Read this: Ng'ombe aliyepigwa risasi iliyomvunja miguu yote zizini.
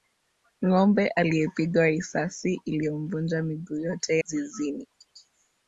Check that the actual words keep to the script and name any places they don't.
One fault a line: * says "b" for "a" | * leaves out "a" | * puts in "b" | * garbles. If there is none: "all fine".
all fine